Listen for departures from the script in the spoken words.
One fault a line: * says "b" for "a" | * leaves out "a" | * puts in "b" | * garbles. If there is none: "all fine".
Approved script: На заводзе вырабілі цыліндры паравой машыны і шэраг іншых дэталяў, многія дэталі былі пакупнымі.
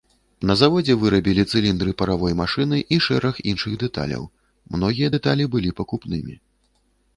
all fine